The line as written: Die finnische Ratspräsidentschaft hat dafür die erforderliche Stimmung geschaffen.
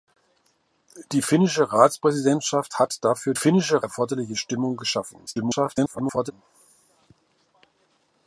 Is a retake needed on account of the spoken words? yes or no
yes